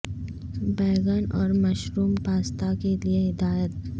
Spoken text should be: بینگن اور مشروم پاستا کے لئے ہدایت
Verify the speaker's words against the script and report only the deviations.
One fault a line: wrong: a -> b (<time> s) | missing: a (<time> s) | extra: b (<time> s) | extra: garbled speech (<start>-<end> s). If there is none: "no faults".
no faults